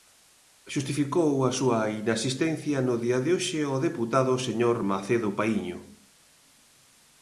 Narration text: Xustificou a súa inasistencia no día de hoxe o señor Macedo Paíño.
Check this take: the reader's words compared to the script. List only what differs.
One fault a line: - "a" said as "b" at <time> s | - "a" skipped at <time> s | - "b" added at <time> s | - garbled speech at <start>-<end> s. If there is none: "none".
- "deputado" added at 3.9 s